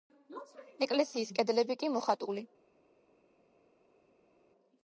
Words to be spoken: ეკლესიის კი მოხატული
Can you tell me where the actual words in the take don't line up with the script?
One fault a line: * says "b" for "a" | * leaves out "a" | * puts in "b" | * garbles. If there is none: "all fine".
* puts in "კედლები"